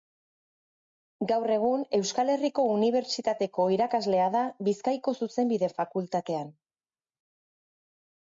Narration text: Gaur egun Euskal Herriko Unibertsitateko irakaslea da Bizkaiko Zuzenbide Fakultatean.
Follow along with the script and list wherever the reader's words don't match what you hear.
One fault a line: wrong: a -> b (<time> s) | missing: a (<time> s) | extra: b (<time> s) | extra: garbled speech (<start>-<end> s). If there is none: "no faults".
no faults